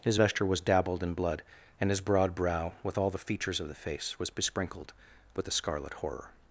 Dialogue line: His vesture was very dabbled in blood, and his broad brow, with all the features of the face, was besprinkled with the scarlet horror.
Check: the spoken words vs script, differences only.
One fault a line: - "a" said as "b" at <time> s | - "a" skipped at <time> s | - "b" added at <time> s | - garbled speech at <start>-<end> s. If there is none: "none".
- "very" skipped at 0.6 s